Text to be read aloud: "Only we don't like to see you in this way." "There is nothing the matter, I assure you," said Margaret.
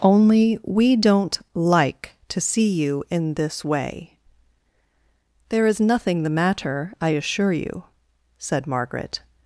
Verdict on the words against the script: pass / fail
pass